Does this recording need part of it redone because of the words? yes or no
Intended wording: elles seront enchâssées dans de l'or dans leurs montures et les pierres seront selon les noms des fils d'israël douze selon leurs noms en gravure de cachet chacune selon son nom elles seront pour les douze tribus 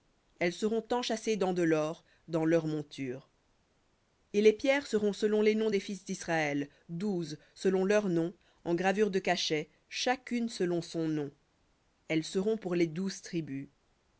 no